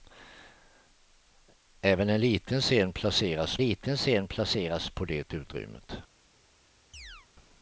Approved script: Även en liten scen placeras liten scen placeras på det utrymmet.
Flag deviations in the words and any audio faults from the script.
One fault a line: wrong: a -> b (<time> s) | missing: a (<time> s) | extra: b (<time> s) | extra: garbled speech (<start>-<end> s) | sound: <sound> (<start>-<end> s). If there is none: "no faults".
sound: chirp (6.9-7.3 s)